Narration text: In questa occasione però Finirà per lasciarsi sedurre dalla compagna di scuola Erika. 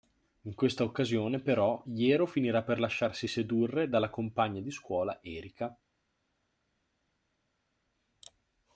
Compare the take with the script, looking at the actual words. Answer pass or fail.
fail